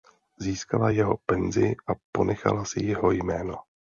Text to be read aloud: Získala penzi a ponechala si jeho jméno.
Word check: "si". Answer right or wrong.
right